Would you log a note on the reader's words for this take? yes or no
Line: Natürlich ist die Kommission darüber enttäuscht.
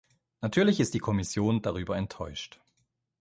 no